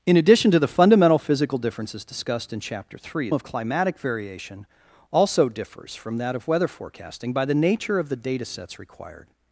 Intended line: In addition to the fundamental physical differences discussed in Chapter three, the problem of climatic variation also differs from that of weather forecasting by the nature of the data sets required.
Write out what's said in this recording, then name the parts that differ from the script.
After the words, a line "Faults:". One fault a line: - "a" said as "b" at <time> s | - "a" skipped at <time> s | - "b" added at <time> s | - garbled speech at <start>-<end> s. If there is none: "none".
In addition to the fundamental physical differences discussed in Chapter three, of climatic variation also differs from that of weather forecasting by the nature of the data sets required.
Faults:
- "the problem" skipped at 3.3 s